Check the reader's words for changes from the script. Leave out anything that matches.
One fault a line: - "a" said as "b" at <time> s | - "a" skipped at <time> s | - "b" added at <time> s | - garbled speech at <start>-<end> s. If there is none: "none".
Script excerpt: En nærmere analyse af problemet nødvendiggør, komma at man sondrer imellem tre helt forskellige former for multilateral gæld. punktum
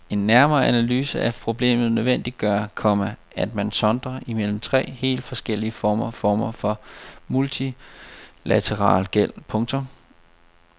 - "former" added at 6.1 s